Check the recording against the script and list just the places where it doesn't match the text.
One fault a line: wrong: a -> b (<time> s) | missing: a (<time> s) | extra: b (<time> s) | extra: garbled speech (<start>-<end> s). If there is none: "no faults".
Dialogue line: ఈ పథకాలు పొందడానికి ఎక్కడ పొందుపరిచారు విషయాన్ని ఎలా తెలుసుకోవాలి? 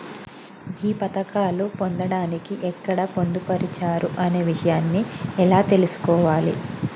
extra: అనే (4.2 s)